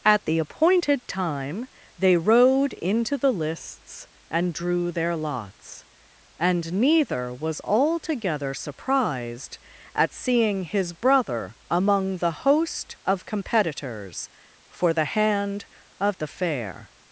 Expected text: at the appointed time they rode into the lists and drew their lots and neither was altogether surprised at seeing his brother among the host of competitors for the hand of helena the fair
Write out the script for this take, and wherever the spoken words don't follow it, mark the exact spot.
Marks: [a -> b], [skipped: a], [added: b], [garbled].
at the appointed time they rode into the lists and drew their lots and neither was altogether surprised at seeing his brother among the host of competitors for the hand of [skipped: helena] the fair